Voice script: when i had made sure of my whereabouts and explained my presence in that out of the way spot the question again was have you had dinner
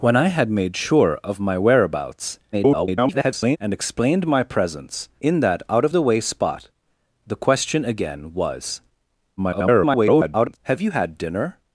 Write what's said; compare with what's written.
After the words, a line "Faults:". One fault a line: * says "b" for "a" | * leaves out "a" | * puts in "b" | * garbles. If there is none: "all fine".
when i had made sure of my whereabouts [garbled] and explained my presence in that out of the way spot the question again was [garbled] have you had dinner
Faults:
* garbles
* garbles